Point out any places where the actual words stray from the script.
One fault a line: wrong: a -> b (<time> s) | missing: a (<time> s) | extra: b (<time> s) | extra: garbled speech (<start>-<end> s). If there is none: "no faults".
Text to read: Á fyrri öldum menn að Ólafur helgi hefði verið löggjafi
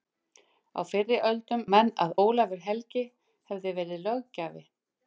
no faults